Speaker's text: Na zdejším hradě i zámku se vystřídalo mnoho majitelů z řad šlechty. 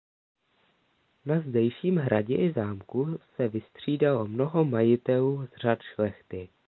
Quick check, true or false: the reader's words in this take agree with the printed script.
true